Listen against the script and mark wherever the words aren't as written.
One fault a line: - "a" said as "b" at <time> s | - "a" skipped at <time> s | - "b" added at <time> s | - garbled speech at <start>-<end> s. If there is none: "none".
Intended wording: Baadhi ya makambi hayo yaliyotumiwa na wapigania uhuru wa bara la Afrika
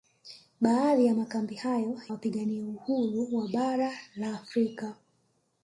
- "yaliyotumiwa na" skipped at 2.0 s